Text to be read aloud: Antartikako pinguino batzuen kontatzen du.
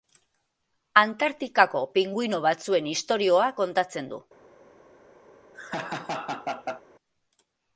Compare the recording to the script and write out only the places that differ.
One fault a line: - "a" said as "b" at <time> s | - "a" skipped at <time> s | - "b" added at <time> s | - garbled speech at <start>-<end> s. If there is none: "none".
- "istorioa" added at 3.0 s